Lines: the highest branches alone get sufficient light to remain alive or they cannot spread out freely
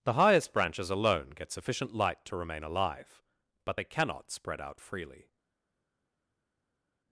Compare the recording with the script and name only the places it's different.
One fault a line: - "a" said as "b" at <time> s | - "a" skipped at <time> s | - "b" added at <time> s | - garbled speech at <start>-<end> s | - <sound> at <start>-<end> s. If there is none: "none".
- "or" said as "but" at 3.6 s